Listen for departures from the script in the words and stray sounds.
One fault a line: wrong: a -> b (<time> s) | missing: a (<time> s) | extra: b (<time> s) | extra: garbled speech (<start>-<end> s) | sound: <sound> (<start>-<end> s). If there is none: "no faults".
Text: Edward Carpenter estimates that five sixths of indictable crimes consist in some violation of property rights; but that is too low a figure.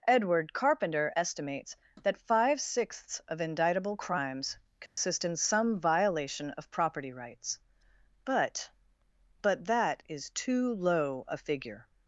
sound: dropout (4.9-5.0 s)
extra: but (9.4 s)